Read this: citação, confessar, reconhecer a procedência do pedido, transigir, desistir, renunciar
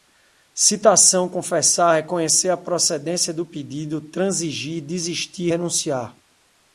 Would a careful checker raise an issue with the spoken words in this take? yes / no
no